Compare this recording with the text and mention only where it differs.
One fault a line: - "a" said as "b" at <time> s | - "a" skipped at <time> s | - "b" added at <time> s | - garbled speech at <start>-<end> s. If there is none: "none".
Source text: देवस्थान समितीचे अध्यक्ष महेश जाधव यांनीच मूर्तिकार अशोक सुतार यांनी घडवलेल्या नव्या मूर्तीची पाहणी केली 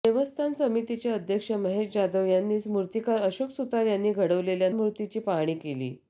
- "नव्या" skipped at 4.7 s